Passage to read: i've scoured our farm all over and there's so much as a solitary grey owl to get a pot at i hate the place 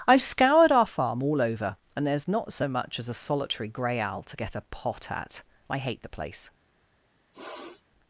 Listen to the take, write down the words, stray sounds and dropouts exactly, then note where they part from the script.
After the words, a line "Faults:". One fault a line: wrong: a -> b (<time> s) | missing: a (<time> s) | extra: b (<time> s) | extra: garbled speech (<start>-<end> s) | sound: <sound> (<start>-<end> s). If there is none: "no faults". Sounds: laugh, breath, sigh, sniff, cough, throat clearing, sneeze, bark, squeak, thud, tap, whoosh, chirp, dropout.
i've scoured our farm all over and there's not so much as a solitary grey owl to get a pot at i hate the place
Faults:
extra: not (2.3 s)
sound: sniff (7.3-7.8 s)